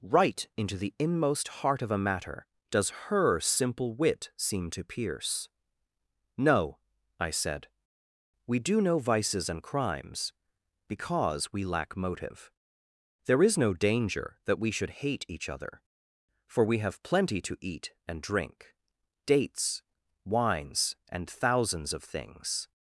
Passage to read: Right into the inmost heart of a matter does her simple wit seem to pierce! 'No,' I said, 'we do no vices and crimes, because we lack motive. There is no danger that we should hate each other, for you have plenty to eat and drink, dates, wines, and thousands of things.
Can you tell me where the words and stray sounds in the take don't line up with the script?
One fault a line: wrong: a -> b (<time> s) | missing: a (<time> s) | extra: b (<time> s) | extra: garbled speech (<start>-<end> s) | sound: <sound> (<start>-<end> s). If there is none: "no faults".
wrong: you -> we (16.6 s)